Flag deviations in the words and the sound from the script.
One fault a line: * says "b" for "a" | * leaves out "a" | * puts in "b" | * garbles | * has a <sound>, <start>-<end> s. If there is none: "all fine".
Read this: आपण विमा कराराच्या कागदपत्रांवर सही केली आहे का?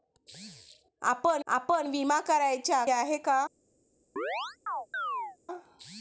* puts in "आपण"
* leaves out "कागदपत्रांवर सही केली"
* has a chirp, 4.2-5.4 s